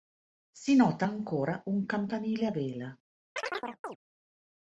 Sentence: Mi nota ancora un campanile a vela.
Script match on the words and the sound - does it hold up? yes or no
no